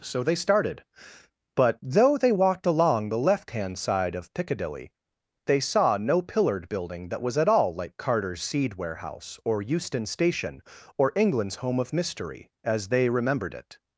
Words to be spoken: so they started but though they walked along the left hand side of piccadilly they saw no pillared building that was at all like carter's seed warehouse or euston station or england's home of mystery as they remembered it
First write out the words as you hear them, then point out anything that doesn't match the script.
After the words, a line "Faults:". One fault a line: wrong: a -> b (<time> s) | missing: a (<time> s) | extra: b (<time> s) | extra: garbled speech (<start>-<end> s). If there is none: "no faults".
so they started but though they walked along the left hand side of piccadilly they saw no pillared building that was at all like carter's seed warehouse or euston station or england's home of mystery as they remembered it
Faults:
no faults